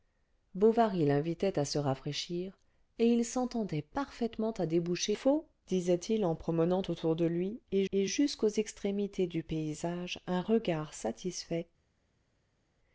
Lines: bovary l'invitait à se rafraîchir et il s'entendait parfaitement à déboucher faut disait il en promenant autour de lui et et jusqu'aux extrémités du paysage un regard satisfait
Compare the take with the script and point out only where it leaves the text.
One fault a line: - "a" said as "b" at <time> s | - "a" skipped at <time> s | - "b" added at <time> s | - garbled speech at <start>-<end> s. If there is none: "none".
none